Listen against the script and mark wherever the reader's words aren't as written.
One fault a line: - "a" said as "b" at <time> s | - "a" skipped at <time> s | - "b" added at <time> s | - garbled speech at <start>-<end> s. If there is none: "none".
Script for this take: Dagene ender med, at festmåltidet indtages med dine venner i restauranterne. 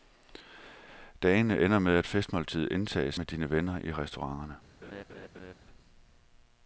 none